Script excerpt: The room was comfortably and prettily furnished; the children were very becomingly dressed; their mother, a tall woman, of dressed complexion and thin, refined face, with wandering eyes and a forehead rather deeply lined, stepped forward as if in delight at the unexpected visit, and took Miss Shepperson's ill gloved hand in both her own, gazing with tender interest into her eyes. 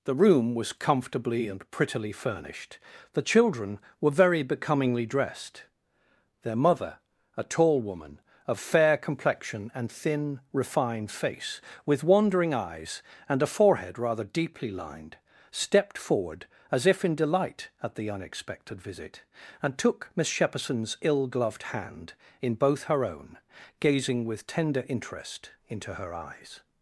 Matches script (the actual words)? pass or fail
fail